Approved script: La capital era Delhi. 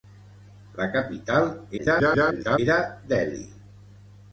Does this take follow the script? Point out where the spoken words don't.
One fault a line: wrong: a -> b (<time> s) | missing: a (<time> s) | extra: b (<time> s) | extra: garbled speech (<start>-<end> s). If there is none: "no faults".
extra: garbled speech (1.8-2.6 s)